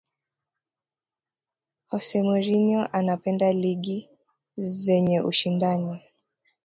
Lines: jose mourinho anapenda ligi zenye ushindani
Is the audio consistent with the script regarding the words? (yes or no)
yes